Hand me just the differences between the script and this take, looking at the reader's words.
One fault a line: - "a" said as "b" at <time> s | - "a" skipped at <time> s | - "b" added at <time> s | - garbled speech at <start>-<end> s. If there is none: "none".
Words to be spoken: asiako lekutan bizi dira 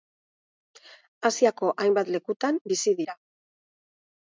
- "hainbat" added at 1.9 s